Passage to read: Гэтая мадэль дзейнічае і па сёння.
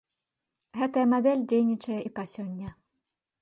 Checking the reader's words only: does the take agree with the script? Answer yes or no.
yes